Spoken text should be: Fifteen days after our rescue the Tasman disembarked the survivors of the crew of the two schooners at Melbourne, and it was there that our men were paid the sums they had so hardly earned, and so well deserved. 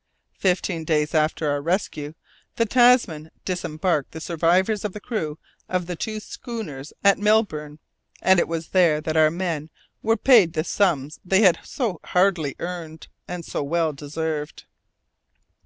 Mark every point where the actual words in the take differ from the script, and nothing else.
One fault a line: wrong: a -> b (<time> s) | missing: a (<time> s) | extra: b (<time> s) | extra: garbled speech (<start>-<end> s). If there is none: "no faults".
no faults